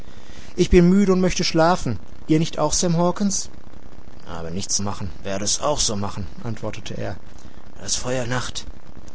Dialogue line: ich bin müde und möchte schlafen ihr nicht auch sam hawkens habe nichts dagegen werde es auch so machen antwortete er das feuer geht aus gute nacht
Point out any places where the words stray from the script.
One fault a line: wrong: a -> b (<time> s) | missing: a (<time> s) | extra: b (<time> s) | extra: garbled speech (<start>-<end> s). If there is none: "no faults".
wrong: dagegen -> machen (4.8 s)
missing: geht aus gute (8.3 s)